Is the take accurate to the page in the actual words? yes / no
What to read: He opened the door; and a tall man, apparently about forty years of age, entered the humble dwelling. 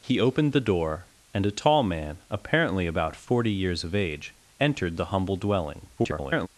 no